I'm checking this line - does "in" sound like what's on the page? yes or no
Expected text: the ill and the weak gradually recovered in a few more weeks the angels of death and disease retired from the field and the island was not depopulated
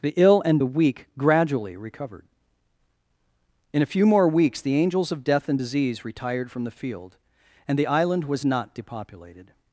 yes